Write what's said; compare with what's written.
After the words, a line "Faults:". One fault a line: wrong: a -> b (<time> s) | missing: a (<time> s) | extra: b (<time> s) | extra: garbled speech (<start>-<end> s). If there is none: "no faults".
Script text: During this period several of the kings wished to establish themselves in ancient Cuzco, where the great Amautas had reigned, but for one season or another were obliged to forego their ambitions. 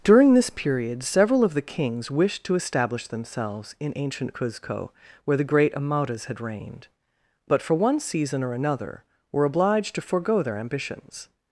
During this period several of the kings wished to establish themselves in ancient Cuzco, where the great Amautas had reigned, but for one season or another were obliged to forego their ambitions.
Faults:
no faults